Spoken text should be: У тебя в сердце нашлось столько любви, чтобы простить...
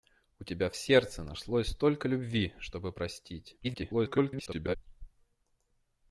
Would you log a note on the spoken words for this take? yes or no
yes